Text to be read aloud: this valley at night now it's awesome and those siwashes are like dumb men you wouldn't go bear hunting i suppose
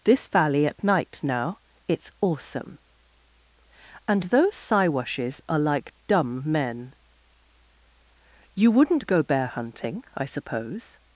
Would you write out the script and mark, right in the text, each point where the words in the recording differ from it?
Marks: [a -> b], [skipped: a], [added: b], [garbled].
this valley at night now it's awesome and those siwashes are like dumb men you wouldn't go bear hunting i suppose